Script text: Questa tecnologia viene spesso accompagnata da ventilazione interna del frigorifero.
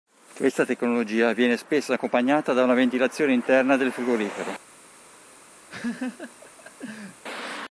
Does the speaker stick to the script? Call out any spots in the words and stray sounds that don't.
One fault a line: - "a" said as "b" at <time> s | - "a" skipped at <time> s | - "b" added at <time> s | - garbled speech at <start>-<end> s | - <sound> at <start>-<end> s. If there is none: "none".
- "una" added at 2.6 s
- laugh at 5.7-7.2 s